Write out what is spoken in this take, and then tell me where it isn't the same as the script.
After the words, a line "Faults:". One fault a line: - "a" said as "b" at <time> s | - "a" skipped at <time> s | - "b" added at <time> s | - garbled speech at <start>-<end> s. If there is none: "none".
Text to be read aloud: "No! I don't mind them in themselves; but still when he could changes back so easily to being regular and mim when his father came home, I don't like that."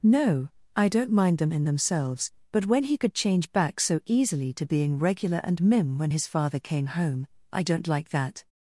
"No! I don't mind them in themselves; but when he could change back so easily to being regular and mim when his father came home, I don't like that."
Faults:
- "still" skipped at 2.6 s
- "changes" said as "change" at 3.1 s